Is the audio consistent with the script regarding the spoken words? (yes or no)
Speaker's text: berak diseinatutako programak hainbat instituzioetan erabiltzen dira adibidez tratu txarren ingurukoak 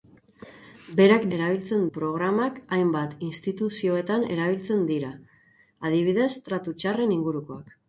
no